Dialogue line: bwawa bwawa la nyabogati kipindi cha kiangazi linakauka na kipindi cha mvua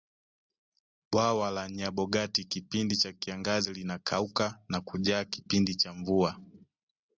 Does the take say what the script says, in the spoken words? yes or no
no